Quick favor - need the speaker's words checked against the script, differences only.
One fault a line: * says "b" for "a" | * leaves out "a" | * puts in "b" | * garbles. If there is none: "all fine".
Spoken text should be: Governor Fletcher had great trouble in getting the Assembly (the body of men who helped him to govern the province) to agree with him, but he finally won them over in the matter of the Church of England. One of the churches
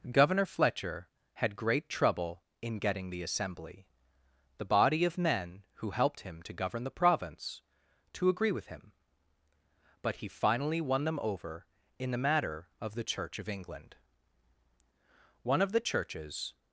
all fine